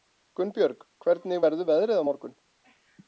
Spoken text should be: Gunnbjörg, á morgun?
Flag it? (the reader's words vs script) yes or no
yes